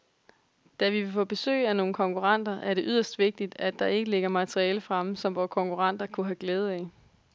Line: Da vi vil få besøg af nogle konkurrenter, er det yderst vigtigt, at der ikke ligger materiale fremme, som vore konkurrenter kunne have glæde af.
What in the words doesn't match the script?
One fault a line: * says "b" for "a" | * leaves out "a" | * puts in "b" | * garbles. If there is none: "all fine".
all fine